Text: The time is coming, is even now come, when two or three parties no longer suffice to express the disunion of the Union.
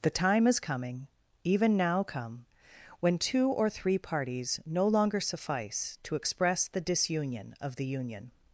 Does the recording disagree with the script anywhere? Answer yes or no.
yes